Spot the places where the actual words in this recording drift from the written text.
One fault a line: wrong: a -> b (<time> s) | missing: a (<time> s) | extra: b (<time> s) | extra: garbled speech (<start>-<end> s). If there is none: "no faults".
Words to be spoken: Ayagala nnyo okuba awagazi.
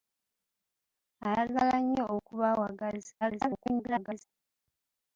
extra: garbled speech (3.2-4.2 s)